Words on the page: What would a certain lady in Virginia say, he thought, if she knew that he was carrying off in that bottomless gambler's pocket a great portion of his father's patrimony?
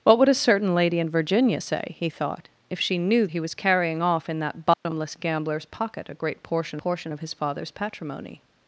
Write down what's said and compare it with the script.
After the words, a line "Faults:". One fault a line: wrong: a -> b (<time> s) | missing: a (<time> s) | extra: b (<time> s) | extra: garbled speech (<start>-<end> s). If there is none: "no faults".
What would a certain lady in Virginia say, he thought, if she knew he was carrying off in that bottomless gambler's pocket a great portion portion of his father's patrimony?
Faults:
missing: that (3.3 s)
extra: portion (6.8 s)